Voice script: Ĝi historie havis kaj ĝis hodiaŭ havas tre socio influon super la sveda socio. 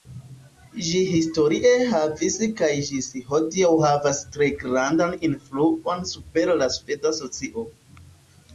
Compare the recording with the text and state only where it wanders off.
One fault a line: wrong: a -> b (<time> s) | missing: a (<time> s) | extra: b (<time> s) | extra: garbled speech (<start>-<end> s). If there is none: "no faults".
wrong: socio -> grandan (4.6 s)